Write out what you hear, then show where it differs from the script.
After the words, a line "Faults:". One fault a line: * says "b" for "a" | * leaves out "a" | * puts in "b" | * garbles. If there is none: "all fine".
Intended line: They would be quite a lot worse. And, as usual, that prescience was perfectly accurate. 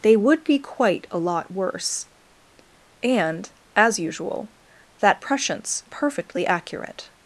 They would be quite a lot worse. And, as usual, that prescience perfectly accurate.
Faults:
* leaves out "was"